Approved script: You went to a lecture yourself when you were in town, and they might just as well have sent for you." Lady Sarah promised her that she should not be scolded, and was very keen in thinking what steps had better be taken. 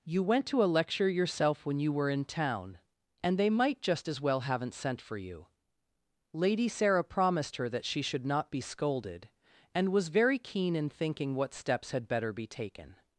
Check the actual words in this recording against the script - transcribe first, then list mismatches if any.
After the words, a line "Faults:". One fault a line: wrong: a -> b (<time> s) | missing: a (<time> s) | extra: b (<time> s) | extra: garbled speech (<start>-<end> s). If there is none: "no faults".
You went to a lecture yourself when you were in town, and they might just as well haven't sent for you." Lady Sarah promised her that she should not be scolded, and was very keen in thinking what steps had better be taken.
Faults:
wrong: have -> haven't (4.4 s)